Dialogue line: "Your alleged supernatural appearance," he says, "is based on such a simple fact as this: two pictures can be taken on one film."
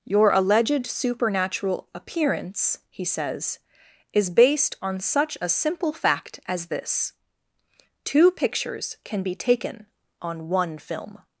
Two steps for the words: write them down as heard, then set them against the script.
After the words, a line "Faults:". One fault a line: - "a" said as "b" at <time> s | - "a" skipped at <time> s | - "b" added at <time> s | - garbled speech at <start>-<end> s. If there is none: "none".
"Your alleged supernatural appearance," he says, "is based on such a simple fact as this: two pictures can be taken on one film."
Faults:
none